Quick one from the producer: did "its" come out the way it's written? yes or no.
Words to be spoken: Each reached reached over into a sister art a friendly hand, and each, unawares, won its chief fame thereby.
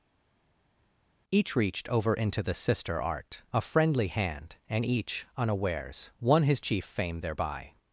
no